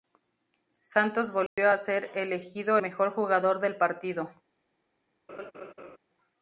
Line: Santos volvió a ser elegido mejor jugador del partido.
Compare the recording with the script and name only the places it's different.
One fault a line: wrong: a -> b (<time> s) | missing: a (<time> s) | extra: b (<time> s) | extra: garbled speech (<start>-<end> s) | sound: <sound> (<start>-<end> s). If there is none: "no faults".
sound: dropout (1.5-1.6 s)
sound: laugh (5.3-6.0 s)